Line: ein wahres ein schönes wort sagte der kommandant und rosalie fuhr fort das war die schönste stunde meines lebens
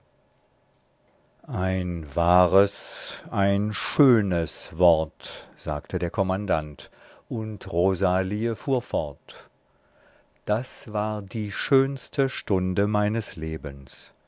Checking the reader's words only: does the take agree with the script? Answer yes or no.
yes